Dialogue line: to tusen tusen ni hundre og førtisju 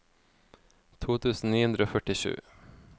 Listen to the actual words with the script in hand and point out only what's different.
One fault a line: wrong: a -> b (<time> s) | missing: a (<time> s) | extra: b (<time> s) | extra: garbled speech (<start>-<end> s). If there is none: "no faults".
missing: tusen (1.5 s)